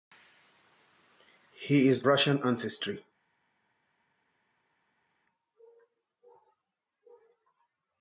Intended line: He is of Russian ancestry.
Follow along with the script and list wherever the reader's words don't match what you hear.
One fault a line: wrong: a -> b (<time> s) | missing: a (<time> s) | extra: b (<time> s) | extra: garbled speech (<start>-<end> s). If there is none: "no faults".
missing: of (2.1 s)